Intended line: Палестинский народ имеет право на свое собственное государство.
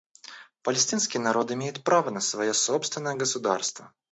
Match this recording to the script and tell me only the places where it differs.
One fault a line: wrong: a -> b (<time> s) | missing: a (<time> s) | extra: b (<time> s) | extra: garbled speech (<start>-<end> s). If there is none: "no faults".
no faults